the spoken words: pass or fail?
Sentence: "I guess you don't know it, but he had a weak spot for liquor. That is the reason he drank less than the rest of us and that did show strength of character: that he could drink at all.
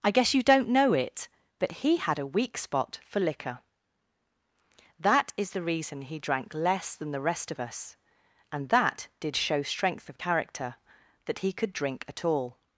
pass